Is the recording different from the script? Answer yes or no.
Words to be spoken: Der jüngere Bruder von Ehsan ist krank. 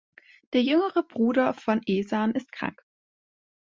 no